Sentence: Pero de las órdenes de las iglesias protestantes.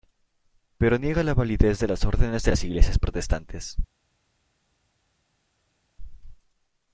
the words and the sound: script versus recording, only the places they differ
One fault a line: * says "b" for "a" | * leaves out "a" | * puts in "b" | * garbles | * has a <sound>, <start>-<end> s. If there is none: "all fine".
* puts in "niega la validez"